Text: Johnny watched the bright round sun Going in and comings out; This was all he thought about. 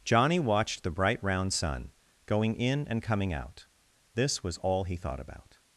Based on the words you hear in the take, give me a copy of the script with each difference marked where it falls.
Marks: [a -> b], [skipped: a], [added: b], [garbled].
Johnny watched the bright round sun Going in and [comings -> coming] out; This was all he thought about.